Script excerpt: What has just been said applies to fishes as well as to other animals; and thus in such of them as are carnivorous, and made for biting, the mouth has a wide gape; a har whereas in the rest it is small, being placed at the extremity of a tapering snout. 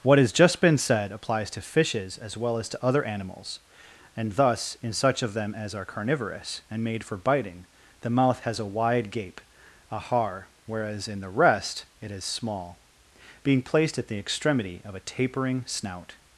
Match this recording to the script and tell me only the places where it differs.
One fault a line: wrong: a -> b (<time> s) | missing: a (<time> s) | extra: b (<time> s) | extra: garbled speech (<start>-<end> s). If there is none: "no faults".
no faults